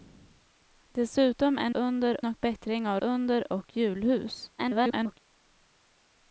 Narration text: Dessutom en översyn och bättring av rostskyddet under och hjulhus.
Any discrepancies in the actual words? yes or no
yes